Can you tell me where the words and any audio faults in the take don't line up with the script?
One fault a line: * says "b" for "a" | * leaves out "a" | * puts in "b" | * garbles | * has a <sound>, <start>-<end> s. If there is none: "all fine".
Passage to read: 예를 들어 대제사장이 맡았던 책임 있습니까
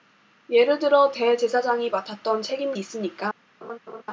* has a laugh, 3.6-4.0 s